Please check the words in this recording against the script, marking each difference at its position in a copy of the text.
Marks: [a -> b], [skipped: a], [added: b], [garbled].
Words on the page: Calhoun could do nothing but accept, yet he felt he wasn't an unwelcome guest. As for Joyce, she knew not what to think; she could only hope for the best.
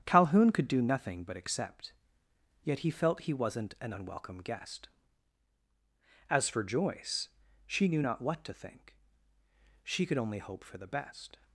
Calhoun could do nothing but accept, yet he felt he wasn't an unwelcome guest. As for Joyce, she knew not what to think; she could only hope for the best.